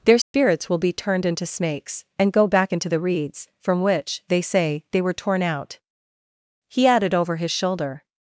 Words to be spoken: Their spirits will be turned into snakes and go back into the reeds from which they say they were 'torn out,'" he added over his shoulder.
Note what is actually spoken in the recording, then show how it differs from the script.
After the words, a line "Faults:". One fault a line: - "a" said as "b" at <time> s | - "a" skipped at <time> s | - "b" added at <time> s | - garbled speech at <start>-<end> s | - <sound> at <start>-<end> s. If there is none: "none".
Their spirits will be turned into snakes and go back into the reeds from which they say they were 'torn out,'" he added over his shoulder.
Faults:
- dropout at 0.2-0.3 s